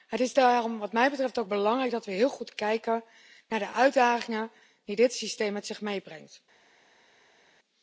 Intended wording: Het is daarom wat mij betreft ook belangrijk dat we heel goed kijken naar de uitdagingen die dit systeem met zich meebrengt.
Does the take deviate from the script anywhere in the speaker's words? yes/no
no